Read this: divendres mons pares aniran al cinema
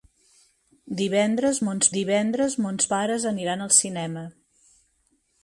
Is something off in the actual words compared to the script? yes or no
yes